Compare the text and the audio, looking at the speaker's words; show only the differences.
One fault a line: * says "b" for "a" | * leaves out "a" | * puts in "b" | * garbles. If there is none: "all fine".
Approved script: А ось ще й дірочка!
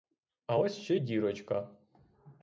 all fine